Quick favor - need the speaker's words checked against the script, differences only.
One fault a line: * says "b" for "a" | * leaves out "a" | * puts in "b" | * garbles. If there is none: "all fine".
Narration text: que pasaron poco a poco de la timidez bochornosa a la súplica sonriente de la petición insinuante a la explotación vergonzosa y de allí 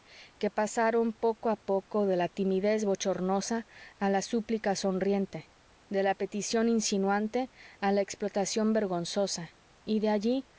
all fine